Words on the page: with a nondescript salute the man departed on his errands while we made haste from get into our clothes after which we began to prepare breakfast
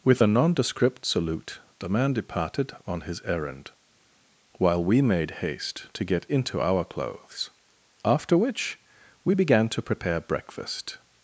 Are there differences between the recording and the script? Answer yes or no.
yes